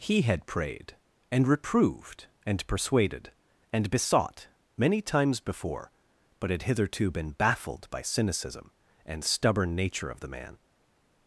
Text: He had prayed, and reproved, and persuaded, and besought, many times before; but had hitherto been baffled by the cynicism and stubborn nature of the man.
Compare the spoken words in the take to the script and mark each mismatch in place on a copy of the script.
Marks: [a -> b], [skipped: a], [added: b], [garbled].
He had prayed, and reproved, and persuaded, and besought, many times before; but had hitherto been baffled by [skipped: the] cynicism and stubborn nature of the man.